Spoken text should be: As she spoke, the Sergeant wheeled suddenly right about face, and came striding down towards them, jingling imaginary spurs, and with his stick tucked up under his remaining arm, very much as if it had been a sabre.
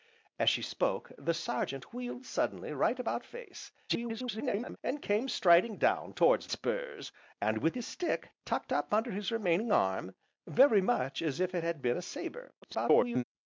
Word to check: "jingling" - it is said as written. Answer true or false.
false